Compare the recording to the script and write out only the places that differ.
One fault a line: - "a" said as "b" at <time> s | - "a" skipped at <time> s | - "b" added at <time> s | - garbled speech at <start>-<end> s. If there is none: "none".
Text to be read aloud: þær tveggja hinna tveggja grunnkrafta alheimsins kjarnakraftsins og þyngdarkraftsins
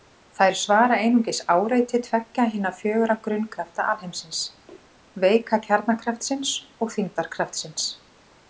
- "svara einungis áreiti" added at 0.6 s
- "tveggja" said as "fjögurra" at 2.8 s
- "veika" added at 5.2 s